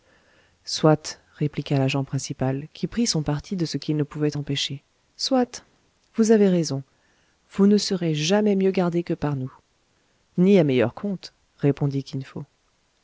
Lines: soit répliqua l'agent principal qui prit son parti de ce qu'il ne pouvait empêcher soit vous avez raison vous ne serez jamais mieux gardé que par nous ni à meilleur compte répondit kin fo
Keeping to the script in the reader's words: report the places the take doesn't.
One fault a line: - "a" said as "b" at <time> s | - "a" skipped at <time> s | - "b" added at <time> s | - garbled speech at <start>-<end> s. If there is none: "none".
none